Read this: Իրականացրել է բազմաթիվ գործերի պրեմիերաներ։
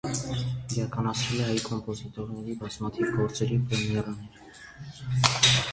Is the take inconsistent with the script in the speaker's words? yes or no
yes